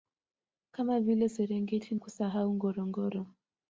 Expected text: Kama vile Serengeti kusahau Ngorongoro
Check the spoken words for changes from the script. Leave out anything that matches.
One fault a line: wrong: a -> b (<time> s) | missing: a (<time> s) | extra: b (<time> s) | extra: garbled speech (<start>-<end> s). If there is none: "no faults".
no faults